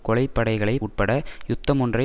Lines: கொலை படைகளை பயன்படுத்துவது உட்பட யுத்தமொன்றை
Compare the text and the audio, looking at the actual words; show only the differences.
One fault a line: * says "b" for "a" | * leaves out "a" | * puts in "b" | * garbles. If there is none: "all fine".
* leaves out "பயன்படுத்துவது"